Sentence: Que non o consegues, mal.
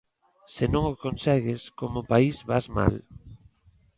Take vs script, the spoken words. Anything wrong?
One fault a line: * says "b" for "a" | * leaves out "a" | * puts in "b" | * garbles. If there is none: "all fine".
* says "Se" for "Que"
* puts in "como país vas"